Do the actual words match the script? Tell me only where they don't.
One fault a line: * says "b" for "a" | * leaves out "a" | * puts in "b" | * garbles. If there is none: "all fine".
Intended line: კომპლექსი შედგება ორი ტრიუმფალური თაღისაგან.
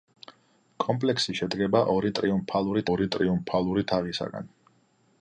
* puts in "ორი ტრიუმფალური"